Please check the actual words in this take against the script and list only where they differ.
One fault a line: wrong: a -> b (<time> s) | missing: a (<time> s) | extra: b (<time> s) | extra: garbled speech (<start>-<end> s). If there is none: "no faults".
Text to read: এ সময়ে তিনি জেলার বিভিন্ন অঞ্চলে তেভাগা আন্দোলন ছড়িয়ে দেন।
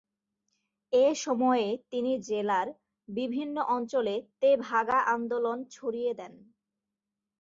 no faults